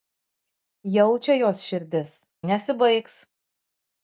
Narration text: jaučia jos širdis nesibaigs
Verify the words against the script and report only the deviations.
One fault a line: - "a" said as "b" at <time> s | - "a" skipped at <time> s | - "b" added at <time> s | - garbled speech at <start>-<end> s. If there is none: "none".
none